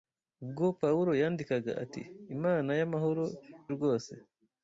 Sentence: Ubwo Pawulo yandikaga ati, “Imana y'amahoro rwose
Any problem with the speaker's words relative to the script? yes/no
no